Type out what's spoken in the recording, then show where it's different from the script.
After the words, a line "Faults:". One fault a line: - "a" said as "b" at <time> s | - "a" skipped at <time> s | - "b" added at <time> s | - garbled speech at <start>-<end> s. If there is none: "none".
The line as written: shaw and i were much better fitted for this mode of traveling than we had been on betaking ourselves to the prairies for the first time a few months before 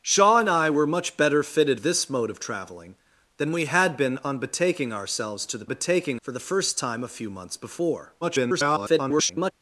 shaw and i were much better fitted this mode of traveling than we had been on betaking ourselves to the betaking for the first time a few months before [garbled]
Faults:
- "for" skipped at 1.8 s
- "prairies" said as "betaking" at 5.7 s
- garbled speech at 8.2-9.5 s